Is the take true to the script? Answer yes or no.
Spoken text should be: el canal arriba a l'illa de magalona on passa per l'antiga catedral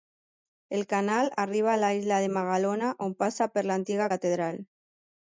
yes